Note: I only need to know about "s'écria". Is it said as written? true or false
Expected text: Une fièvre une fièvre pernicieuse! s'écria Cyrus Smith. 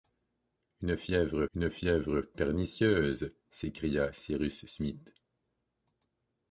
true